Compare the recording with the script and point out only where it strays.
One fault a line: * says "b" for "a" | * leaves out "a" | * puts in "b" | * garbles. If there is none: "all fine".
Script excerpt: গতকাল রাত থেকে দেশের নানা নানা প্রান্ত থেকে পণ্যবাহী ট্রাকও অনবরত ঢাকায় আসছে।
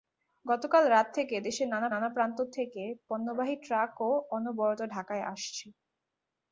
all fine